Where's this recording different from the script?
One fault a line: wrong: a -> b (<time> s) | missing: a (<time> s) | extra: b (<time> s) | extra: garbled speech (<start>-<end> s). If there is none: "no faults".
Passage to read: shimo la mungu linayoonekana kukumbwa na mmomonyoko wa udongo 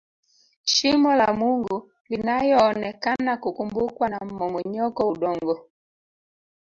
missing: wa (5.1 s)